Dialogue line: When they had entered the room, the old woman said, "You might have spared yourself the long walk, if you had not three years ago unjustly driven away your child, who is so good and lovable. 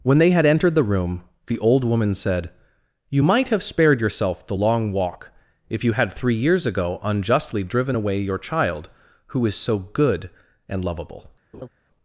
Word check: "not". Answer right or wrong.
wrong